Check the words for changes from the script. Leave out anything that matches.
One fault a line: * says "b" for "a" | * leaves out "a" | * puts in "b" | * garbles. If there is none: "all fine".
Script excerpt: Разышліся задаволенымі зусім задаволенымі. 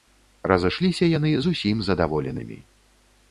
* says "яны" for "задаволенымі"